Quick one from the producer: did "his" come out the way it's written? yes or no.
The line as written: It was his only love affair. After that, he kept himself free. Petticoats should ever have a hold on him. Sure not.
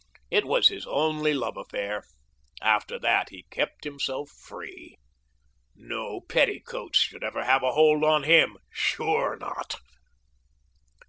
yes